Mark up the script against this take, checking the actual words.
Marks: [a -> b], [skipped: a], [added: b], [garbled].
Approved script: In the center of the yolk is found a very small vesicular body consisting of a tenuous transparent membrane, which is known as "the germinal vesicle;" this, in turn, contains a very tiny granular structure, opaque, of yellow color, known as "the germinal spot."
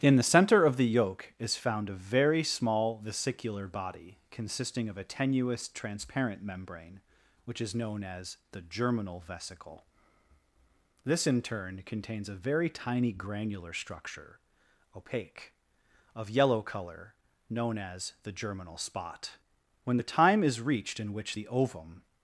In the center of the yolk is found a very small vesicular body consisting of a tenuous transparent membrane, which is known as "the germinal vesicle;" this, in turn, contains a very tiny granular structure, opaque, of yellow color, known as "the germinal spot." [added: When the time is reached in which the ovum]